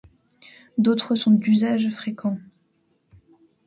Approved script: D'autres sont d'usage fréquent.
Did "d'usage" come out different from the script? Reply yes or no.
no